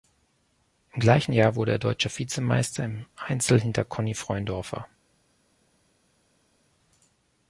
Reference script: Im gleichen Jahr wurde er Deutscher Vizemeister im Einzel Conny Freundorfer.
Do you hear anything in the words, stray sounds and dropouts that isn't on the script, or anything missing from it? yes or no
yes